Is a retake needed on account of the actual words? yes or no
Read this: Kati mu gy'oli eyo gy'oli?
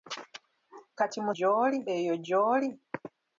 no